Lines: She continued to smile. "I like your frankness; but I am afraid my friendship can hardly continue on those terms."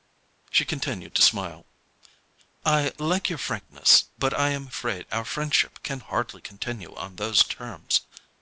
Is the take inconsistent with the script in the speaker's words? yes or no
yes